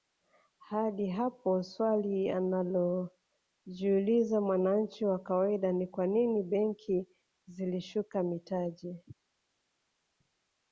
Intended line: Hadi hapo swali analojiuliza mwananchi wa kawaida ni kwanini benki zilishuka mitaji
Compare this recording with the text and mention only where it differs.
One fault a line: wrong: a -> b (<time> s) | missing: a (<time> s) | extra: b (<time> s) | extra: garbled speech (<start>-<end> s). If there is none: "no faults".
no faults